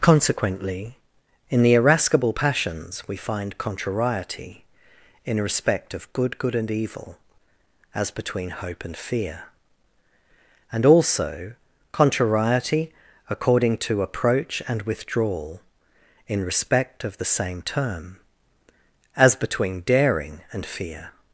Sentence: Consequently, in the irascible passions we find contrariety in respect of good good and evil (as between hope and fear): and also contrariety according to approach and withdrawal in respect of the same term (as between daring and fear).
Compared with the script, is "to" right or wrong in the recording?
right